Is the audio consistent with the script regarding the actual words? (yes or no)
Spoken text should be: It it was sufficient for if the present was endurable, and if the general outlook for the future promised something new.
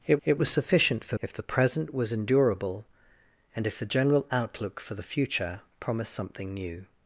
yes